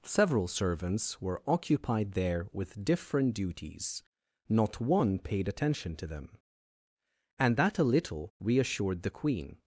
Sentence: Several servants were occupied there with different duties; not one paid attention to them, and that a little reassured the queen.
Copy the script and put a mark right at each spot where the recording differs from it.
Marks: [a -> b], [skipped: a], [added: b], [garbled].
Several servants were occupied there with different duties; not one paid attention to them, and that a little reassured the queen.